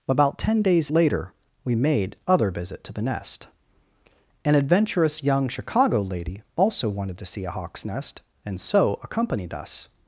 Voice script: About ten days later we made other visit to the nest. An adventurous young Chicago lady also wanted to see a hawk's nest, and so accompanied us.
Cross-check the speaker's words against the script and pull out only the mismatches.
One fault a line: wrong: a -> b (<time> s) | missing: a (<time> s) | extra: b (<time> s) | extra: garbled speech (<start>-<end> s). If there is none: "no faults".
no faults